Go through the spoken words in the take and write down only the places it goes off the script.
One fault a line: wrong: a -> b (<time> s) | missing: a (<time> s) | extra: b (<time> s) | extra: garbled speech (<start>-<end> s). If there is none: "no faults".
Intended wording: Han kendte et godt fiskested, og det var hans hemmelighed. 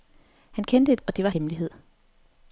missing: godt fiskested (1.0 s)
missing: hans (1.3 s)